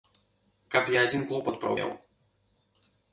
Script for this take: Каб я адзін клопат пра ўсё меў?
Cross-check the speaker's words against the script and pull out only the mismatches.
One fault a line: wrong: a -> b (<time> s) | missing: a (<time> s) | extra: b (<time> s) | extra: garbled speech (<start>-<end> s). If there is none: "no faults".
missing: ўсё (1.7 s)